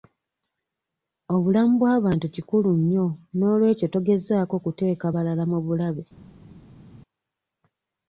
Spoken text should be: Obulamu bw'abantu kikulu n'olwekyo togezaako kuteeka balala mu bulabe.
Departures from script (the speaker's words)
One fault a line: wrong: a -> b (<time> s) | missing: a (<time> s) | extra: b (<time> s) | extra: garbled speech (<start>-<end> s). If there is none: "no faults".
extra: nnyo (2.8 s)